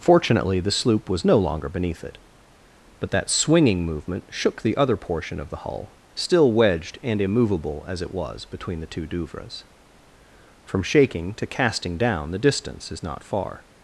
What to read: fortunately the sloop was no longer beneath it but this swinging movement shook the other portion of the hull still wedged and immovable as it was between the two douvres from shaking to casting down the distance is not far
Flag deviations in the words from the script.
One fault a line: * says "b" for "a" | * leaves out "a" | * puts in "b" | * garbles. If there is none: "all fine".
* says "that" for "this"